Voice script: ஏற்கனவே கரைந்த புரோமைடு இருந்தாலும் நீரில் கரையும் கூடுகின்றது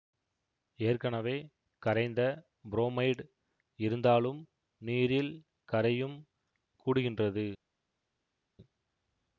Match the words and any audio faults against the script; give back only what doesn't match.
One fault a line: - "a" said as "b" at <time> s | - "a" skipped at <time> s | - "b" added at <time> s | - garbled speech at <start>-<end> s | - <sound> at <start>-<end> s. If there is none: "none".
none